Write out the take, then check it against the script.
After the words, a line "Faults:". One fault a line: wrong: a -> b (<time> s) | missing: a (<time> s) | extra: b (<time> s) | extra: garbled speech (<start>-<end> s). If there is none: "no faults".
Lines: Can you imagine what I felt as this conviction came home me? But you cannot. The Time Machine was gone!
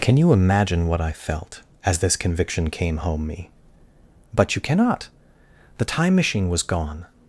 Can you imagine what I felt as this conviction came home me? But you cannot. The Time Machine was gone!
Faults:
no faults